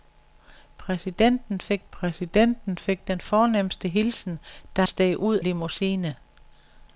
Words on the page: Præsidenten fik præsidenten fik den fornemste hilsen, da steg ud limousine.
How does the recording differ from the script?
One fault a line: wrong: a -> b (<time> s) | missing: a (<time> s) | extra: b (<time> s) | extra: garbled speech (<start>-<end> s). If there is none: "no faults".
no faults